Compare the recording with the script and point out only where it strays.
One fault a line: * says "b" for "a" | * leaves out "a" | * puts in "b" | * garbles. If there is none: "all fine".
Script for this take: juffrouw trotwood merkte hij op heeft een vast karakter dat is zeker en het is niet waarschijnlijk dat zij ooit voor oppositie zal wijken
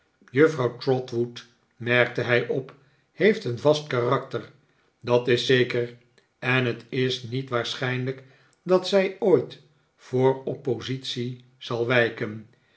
all fine